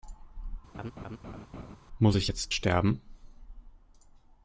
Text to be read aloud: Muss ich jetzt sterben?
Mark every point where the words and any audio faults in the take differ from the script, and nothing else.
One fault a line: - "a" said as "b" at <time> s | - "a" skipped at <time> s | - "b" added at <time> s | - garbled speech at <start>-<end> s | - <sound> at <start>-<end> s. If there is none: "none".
- laugh at 0.7-1.8 s